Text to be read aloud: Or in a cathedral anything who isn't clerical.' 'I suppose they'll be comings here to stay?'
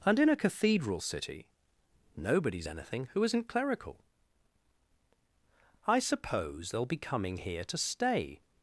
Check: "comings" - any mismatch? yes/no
yes